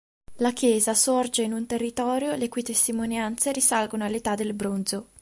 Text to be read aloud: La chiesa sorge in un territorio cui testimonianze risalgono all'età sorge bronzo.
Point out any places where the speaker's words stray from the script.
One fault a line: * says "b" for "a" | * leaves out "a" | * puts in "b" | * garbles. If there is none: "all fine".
* puts in "le"
* says "del" for "sorge"